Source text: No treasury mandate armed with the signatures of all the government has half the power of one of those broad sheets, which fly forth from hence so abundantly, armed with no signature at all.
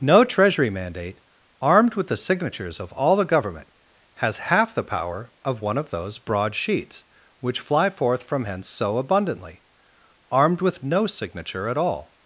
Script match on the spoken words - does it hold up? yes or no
yes